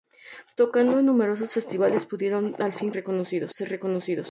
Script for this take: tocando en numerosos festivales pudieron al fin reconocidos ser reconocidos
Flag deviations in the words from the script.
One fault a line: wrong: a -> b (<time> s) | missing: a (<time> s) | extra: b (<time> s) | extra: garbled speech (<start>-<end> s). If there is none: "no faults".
no faults